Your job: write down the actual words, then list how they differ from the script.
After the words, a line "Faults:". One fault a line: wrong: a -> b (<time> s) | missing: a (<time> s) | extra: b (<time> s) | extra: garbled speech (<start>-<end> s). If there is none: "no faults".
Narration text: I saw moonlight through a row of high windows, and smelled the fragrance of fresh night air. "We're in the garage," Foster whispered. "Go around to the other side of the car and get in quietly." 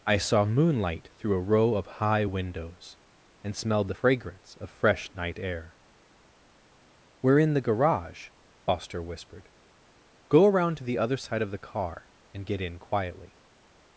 I saw moonlight through a row of high windows, and smelled the fragrance of fresh night air. "We're in the garage," Foster whispered. "Go around to the other side of the car and get in quietly."
Faults:
no faults